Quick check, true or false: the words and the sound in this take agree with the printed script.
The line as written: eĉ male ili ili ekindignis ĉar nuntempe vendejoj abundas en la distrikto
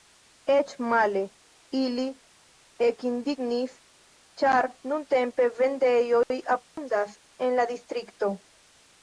false